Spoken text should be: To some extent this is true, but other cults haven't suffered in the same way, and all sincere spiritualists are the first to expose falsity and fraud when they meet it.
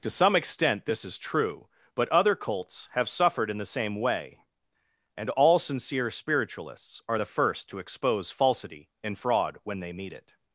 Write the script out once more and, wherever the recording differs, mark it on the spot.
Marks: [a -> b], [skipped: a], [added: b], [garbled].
To some extent this is true, but other cults [haven't -> have] suffered in the same way, and all sincere spiritualists are the first to expose falsity and fraud when they meet it.